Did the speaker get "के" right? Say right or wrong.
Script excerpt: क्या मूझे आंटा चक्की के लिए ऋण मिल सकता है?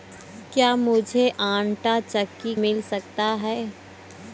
wrong